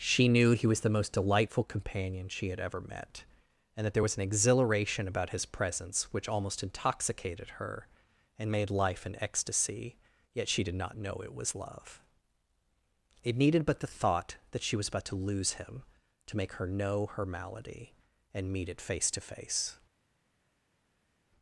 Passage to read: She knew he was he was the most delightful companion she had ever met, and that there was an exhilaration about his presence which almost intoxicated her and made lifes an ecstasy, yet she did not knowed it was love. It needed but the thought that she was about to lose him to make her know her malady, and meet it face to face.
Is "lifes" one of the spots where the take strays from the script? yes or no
yes